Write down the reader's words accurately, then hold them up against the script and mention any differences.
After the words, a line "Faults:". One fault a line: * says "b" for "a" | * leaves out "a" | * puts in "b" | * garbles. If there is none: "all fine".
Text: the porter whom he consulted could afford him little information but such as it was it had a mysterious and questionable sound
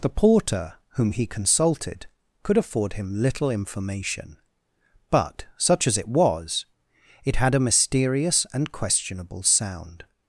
the porter whom he consulted could afford him little information but such as it was it had a mysterious and questionable sound
Faults:
all fine